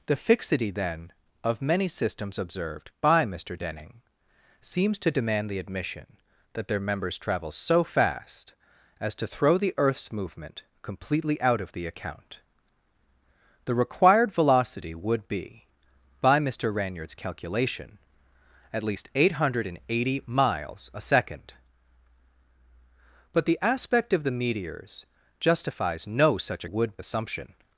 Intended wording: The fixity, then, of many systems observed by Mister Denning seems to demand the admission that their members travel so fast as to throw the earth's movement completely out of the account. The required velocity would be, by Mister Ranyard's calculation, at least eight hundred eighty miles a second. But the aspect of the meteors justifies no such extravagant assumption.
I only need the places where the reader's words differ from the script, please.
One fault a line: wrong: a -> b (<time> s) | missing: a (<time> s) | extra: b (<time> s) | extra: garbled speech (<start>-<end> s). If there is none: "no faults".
wrong: extravagant -> would (26.6 s)